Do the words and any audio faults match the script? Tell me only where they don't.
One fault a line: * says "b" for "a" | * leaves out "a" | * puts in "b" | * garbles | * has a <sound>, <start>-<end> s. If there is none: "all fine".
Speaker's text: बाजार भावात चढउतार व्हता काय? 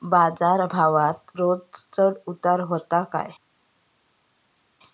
* puts in "रोज"